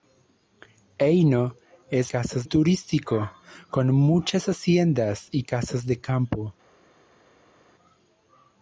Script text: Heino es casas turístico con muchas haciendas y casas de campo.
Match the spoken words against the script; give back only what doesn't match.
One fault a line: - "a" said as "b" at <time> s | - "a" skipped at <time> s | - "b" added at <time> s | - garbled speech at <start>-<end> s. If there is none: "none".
none